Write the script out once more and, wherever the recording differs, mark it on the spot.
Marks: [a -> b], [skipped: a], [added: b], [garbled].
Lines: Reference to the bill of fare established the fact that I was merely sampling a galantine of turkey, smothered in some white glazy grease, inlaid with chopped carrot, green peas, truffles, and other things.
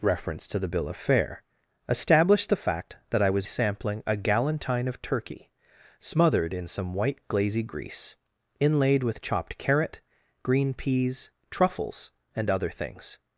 Reference to the bill of fare established the fact that I was [skipped: merely] sampling a galantine of turkey, smothered in some white glazy grease, inlaid with chopped carrot, green peas, truffles, and other things.